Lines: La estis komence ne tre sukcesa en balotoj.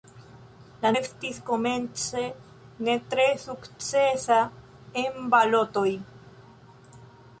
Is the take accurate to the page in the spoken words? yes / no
yes